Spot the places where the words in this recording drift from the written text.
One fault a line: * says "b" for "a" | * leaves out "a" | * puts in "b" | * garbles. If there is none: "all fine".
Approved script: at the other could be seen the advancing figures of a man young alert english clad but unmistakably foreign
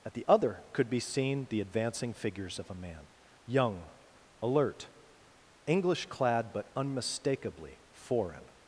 all fine